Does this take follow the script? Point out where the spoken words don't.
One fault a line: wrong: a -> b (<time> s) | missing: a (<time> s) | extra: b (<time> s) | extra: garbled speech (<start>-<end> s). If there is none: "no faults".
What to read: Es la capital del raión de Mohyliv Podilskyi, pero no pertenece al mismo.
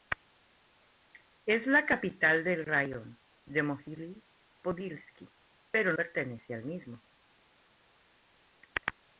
missing: no (5.9 s)